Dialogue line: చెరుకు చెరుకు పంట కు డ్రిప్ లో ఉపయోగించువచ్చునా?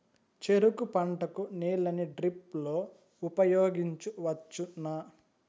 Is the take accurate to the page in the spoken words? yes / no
no